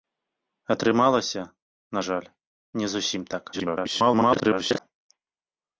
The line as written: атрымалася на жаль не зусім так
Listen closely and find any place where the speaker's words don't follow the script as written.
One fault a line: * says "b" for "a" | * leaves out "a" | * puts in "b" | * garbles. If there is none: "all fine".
* garbles